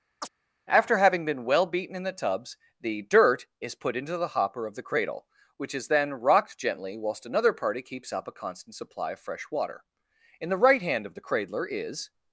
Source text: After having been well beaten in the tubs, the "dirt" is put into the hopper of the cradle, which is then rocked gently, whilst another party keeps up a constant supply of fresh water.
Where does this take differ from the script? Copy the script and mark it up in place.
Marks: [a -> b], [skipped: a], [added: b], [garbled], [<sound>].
[chirp] After having been well beaten in the tubs, the "dirt" is put into the hopper of the cradle, which is then rocked gently, whilst another party keeps up a constant supply of fresh water. [added: In the right hand of the cradler is]